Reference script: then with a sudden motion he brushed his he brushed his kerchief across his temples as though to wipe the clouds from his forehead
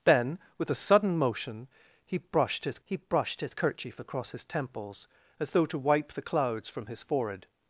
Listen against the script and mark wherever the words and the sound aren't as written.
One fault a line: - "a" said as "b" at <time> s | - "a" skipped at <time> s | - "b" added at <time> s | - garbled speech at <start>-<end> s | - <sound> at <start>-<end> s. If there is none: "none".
none